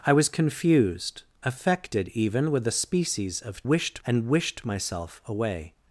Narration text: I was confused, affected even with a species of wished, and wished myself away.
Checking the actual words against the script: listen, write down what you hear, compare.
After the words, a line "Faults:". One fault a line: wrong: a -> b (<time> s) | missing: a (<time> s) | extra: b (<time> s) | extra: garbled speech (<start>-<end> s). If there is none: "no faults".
I was confused, affected even with a species of wished, and wished myself away.
Faults:
no faults